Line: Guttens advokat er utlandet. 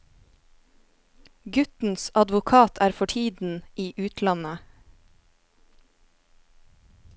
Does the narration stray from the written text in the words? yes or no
yes